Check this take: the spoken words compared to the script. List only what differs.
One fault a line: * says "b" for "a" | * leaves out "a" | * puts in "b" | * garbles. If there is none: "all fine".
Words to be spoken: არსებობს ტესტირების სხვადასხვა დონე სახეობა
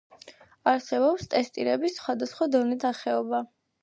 all fine